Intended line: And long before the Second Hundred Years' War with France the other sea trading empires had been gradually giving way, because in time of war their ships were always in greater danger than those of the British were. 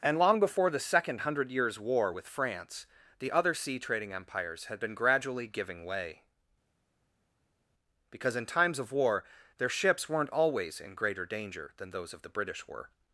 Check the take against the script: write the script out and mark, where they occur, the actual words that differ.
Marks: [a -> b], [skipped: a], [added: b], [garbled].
And long before the Second Hundred Years' War with France the other sea trading empires had been gradually giving way, because in [time -> times] of war their ships [were -> weren't] always in greater danger than those of the British were.